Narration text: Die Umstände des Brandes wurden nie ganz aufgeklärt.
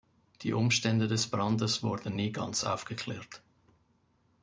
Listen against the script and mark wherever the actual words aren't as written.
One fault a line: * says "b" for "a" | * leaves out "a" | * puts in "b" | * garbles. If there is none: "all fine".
all fine